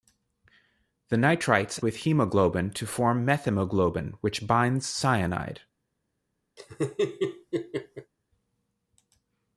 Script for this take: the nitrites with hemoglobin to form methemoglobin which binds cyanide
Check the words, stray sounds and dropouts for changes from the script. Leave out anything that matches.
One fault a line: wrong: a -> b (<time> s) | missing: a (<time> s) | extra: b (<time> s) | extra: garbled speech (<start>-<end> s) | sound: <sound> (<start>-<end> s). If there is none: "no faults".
sound: laugh (6.6-8.1 s)